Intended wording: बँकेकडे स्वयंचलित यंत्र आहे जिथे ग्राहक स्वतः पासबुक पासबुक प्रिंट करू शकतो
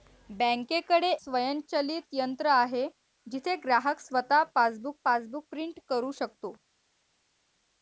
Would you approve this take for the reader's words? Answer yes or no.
yes